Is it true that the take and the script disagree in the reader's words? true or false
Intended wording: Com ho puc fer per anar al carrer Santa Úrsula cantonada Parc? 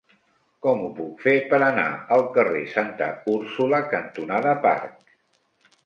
false